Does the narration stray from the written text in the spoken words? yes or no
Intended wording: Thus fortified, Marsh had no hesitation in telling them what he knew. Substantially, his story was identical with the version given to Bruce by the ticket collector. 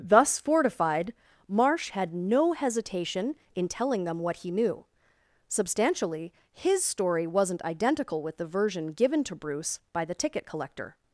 yes